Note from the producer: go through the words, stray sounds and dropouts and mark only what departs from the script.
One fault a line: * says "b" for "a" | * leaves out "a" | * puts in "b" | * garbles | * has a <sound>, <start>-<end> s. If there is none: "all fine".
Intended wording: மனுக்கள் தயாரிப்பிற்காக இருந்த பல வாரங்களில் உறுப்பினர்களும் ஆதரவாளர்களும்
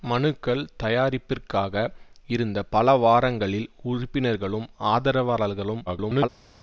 * garbles